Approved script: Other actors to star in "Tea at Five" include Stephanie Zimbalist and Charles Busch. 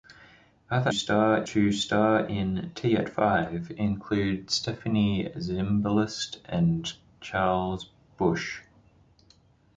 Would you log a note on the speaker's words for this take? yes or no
yes